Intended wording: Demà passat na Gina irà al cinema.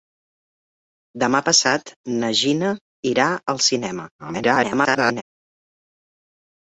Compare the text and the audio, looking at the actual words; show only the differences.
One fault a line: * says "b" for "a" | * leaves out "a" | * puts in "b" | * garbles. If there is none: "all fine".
* garbles